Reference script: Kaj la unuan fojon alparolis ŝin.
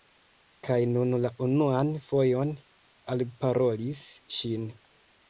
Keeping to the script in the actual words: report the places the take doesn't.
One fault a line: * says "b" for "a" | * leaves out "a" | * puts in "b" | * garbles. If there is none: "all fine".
* puts in "nun"